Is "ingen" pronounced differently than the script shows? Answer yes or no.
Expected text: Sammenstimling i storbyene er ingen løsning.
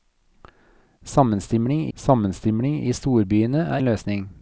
yes